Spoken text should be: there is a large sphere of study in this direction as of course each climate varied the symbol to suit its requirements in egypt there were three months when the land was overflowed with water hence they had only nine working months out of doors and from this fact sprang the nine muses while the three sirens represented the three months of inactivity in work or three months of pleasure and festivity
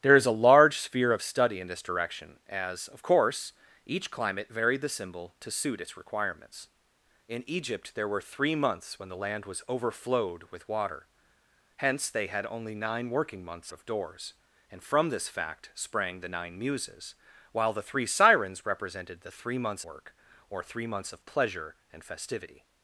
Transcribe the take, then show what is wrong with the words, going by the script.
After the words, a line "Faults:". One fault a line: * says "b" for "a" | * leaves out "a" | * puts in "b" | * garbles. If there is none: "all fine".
there is a large sphere of study in this direction as of course each climate varied the symbol to suit its requirements in egypt there were three months when the land was overflowed with water hence they had only nine working months of doors and from this fact sprang the nine muses while the three sirens represented the three months work or three months of pleasure and festivity
Faults:
* leaves out "out"
* leaves out "of inactivity in"